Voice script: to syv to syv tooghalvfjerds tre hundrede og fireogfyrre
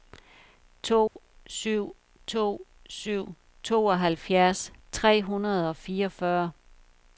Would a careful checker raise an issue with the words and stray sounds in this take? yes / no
yes